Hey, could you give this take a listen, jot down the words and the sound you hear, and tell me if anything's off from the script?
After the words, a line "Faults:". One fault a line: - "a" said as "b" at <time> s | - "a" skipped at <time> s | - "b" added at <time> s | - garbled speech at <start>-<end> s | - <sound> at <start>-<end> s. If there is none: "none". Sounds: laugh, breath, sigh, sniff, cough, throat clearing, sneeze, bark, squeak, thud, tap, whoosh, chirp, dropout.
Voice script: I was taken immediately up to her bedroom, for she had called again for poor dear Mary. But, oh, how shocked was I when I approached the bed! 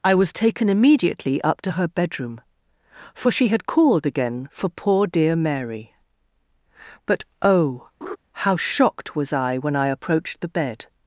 I was taken immediately up to her bedroom, for she had called again for poor dear Mary. But, oh, how shocked was I when I approached the bed!
Faults:
- laugh at 8.0-8.2 s